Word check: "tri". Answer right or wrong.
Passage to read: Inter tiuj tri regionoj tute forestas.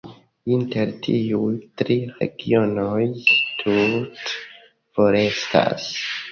right